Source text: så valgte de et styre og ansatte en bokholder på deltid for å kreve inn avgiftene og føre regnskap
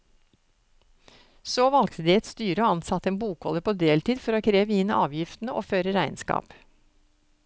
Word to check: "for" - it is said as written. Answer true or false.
true